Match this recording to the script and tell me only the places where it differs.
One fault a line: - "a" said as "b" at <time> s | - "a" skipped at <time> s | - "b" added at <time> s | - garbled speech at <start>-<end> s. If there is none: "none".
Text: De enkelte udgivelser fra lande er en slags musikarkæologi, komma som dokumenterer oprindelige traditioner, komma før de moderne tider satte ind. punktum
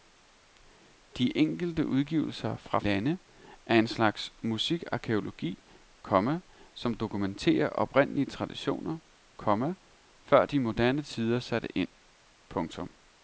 none